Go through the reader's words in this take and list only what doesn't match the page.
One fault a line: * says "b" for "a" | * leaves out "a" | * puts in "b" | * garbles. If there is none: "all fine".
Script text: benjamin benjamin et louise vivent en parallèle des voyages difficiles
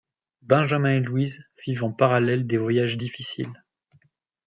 * leaves out "benjamin"